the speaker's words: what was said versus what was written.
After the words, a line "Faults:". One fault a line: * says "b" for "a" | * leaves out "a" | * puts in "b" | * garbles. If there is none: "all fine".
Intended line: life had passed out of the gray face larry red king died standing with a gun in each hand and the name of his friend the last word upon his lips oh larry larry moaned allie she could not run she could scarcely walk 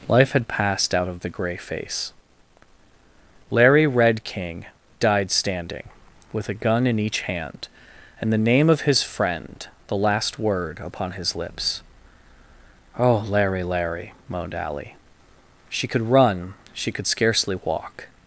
life had passed out of the gray face larry red king died standing with a gun in each hand and the name of his friend the last word upon his lips oh larry larry moaned allie she could run she could scarcely walk
Faults:
* leaves out "not"